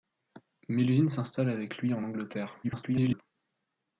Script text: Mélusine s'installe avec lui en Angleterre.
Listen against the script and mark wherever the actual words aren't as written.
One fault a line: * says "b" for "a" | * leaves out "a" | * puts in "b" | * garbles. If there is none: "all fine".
* garbles